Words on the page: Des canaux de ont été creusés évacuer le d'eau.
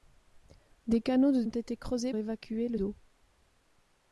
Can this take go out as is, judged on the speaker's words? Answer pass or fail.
pass